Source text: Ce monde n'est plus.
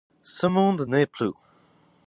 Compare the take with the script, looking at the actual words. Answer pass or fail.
pass